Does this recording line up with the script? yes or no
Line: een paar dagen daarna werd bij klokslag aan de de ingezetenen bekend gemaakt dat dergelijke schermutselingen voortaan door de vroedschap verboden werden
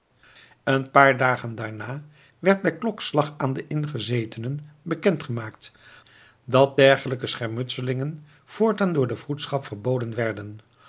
no